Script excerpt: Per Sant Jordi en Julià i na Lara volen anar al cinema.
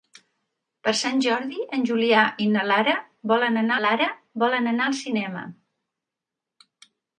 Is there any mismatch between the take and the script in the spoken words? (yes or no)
yes